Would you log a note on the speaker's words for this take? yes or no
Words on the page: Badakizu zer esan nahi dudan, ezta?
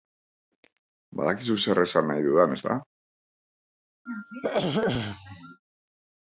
no